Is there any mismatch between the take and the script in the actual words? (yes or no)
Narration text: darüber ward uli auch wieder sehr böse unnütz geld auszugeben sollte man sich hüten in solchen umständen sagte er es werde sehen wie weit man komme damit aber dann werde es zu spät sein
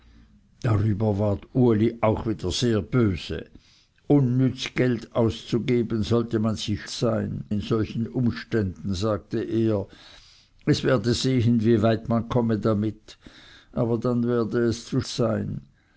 yes